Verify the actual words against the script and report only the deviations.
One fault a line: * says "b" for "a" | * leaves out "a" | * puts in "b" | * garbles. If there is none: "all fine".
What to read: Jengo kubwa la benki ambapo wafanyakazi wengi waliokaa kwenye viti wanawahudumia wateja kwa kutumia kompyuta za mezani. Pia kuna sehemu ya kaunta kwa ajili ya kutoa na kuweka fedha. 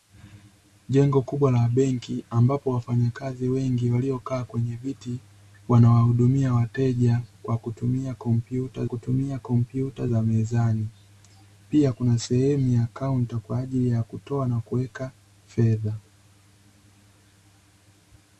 * puts in "kutumia kompyuta"